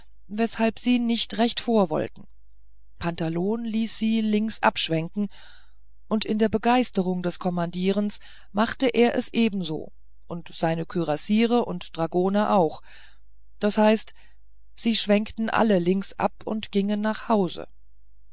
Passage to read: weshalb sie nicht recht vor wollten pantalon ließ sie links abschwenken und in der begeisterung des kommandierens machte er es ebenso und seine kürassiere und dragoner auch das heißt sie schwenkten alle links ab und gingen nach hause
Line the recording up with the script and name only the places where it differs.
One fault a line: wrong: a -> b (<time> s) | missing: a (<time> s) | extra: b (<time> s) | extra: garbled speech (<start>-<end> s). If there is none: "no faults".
no faults